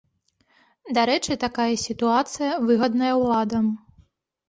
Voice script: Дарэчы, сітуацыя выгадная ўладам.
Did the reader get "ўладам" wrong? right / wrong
right